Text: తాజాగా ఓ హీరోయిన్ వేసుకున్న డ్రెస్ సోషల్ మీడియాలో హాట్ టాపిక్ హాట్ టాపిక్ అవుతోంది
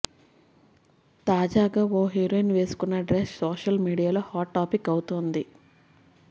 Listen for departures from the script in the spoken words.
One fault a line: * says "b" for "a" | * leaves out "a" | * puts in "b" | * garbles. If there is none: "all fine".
* leaves out "హాట్ టాపిక్"